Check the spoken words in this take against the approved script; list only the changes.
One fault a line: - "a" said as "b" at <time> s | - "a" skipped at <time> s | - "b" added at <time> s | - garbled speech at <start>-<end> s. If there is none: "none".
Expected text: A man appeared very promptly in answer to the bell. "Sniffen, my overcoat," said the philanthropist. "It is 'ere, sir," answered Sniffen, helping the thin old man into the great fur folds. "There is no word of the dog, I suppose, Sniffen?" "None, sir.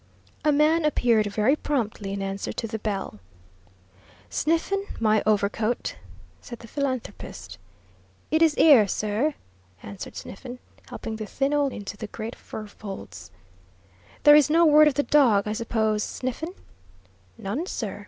- "man" skipped at 11.7 s